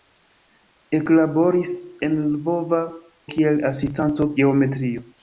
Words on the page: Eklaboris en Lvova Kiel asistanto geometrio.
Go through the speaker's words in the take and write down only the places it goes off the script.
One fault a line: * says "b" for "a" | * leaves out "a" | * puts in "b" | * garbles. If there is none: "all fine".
all fine